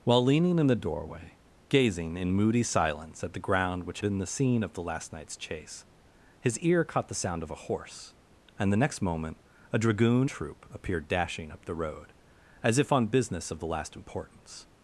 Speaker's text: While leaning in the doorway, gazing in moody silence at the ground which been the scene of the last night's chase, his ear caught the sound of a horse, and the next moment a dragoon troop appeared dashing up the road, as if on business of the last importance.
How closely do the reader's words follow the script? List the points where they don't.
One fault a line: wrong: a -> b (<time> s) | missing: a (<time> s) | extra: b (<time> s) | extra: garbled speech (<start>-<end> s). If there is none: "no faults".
no faults